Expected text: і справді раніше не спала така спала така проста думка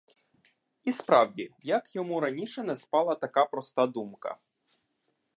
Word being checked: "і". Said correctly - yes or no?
yes